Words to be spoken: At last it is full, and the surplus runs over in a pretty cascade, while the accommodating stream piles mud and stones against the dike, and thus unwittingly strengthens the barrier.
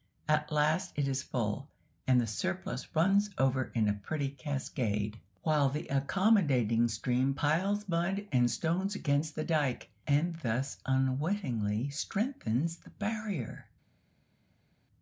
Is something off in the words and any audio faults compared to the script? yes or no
no